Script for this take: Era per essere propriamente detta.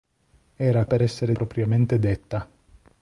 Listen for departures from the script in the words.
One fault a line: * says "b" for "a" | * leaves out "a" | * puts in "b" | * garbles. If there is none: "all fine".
all fine